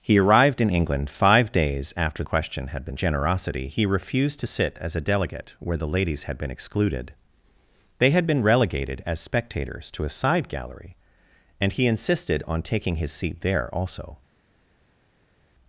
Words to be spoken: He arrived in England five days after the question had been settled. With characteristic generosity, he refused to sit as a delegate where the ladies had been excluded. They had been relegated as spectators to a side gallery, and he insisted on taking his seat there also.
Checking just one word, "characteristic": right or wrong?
wrong